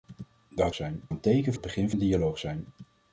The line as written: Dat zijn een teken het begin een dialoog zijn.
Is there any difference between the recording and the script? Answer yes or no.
no